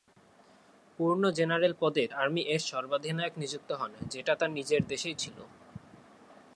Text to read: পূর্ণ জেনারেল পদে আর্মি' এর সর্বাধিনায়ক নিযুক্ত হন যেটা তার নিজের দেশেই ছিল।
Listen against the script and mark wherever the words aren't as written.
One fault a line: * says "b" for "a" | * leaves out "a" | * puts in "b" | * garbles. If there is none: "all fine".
all fine